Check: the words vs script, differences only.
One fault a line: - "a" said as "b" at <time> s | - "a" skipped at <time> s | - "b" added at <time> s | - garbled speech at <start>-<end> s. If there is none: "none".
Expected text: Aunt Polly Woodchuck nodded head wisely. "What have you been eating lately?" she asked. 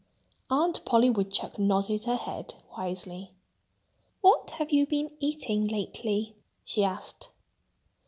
- "her" added at 2.0 s